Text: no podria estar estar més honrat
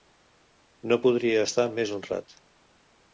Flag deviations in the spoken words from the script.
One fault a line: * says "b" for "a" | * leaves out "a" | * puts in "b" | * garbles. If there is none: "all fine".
* leaves out "estar"